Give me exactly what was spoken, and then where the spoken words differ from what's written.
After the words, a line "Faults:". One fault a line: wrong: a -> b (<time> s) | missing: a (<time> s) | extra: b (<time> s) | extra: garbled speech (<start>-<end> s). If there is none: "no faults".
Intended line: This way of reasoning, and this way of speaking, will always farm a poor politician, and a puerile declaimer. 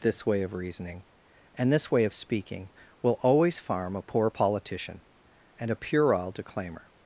This way of reasoning, and this way of speaking, will always farm a poor politician, and a puerile declaimer.
Faults:
no faults